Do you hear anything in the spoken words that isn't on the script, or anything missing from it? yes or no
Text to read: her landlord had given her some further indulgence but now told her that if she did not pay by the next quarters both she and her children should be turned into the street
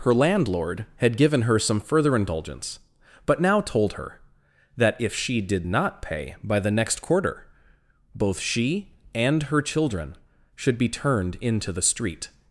yes